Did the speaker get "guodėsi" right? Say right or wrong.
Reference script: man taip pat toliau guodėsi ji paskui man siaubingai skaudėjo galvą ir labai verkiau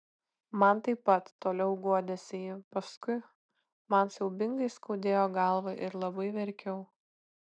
right